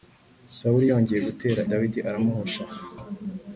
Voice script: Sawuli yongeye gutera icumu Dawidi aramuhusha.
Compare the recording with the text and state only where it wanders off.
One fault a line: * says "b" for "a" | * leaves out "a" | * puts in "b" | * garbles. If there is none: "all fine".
* leaves out "icumu"